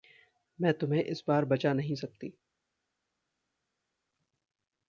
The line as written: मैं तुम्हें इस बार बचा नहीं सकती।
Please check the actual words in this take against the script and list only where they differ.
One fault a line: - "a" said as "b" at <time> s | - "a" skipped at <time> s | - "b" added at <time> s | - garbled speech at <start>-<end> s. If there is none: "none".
none